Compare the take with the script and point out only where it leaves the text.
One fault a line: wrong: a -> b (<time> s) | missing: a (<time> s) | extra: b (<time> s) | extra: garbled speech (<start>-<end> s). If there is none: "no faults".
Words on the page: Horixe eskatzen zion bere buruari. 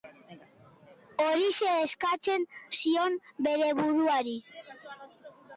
no faults